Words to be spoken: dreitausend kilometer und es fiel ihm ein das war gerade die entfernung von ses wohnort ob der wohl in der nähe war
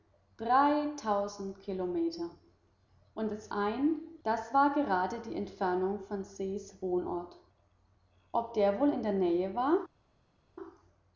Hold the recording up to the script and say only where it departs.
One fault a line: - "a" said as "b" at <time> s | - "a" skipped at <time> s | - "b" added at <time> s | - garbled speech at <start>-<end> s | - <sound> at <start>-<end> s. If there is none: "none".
- "fiel ihm" skipped at 3.5 s